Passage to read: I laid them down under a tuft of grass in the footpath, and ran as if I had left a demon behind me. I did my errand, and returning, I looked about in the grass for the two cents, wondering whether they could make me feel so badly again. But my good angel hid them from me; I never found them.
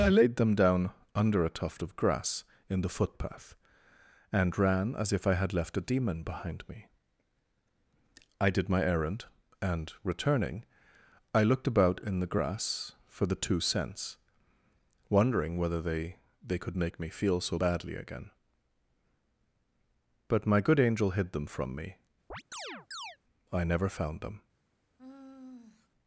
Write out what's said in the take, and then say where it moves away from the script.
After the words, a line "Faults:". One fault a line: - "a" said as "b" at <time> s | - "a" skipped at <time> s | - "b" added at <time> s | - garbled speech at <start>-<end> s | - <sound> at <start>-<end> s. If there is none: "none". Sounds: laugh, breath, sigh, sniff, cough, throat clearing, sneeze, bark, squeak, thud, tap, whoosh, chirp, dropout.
I laid them down under a tuft of grass in the footpath, and ran as if I had left a demon behind me. I did my errand, and returning, I looked about in the grass for the two cents, wondering whether they they could make me feel so badly again. But my good angel hid them from me; I never found them.
Faults:
- "they" added at 16.4 s
- chirp at 22.3-23.2 s
- sigh at 25.0-25.9 s